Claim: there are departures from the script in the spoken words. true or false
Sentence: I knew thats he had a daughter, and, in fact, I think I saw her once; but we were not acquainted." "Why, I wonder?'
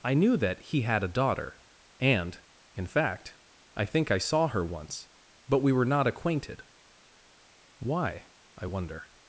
true